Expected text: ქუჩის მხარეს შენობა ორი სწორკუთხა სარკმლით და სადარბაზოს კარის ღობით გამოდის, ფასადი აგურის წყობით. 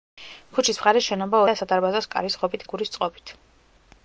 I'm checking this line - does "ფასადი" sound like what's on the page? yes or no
no